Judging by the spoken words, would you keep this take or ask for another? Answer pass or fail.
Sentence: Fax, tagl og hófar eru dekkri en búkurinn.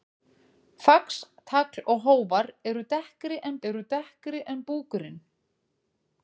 fail